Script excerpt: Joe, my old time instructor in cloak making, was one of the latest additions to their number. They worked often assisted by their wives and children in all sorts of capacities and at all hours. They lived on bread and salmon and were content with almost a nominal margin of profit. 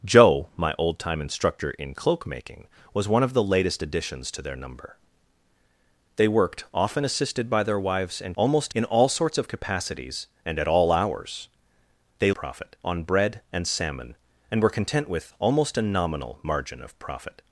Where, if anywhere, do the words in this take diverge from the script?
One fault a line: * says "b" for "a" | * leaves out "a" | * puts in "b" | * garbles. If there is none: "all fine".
* says "almost" for "children"
* says "profit" for "lived"